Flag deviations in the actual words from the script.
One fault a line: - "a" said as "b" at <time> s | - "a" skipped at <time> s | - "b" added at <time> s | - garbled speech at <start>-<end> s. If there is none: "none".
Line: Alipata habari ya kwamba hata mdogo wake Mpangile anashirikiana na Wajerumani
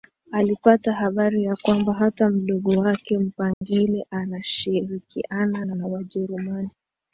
- "na" added at 5.7 s